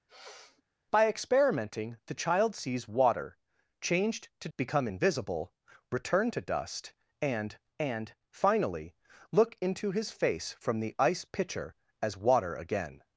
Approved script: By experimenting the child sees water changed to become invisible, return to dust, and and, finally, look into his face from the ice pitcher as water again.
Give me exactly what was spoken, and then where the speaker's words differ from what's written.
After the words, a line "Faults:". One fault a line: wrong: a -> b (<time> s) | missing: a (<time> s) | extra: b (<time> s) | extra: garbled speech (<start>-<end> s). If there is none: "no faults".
By experimenting the child sees water changed to become invisible, return to dust, and and, finally, look into his face from the ice pitcher as water again.
Faults:
no faults